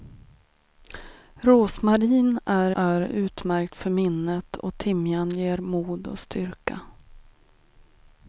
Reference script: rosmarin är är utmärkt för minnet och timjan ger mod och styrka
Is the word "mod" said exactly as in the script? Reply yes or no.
yes